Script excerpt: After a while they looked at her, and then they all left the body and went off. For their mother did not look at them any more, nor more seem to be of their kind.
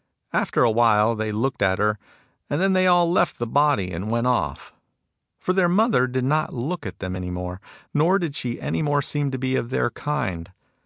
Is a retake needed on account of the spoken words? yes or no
yes